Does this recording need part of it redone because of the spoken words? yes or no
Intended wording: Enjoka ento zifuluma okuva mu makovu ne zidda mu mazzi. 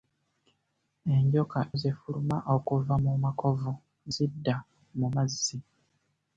yes